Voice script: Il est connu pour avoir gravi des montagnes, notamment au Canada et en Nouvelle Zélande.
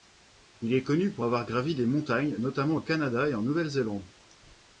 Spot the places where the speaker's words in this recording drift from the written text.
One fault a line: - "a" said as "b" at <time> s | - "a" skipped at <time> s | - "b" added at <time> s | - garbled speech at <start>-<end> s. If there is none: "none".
none